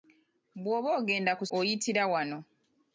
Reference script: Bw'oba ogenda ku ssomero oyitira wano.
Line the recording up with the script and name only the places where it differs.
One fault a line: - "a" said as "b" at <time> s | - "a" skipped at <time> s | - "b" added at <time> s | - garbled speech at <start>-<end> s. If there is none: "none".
- "ssomero" skipped at 1.4 s